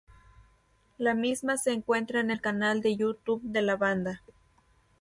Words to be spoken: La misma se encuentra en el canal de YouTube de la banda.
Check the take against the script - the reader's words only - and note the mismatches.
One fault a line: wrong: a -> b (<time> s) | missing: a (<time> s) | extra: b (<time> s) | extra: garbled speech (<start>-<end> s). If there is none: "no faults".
no faults